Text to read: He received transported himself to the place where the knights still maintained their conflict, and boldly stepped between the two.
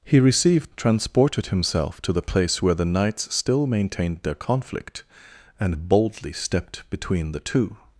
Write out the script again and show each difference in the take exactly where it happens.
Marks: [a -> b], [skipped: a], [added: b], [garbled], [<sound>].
He received transported himself to the place where the knights still maintained their conflict, and boldly stepped between the two.